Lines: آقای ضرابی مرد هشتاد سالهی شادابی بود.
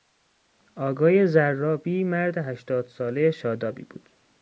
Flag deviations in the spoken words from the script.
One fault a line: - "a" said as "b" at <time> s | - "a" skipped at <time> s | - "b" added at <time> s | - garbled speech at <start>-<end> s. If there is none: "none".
none